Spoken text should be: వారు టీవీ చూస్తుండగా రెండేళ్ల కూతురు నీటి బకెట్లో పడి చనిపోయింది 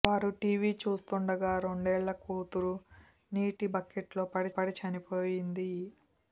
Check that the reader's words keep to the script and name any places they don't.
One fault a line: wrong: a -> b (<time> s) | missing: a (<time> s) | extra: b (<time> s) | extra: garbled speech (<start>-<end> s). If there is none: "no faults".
extra: పడి (4.6 s)